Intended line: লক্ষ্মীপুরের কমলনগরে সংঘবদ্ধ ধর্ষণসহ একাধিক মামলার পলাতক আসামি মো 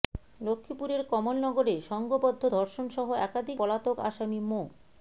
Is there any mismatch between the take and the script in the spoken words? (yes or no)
yes